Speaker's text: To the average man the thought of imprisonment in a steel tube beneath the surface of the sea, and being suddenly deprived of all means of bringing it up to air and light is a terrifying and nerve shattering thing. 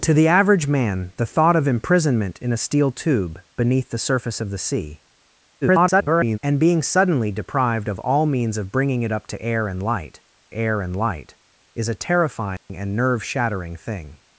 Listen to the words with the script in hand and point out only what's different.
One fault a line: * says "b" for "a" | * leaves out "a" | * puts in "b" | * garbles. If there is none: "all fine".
* garbles
* puts in "air and light"